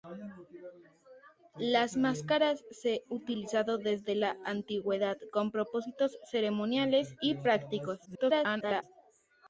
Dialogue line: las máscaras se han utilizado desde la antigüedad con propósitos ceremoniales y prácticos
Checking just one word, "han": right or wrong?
wrong